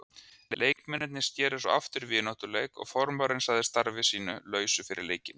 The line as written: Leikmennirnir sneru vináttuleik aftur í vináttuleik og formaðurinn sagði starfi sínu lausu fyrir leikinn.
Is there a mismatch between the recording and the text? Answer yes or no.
yes